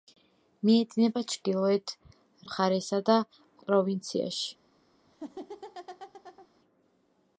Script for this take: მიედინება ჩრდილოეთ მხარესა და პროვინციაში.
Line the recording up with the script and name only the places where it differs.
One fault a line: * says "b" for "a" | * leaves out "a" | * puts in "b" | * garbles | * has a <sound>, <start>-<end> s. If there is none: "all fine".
* has a laugh, 5.1-6.5 s